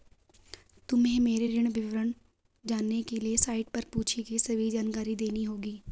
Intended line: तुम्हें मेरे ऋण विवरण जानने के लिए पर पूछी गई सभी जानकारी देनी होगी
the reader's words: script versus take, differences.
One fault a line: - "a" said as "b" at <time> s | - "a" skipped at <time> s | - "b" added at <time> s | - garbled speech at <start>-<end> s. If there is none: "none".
- "साइट" added at 3.4 s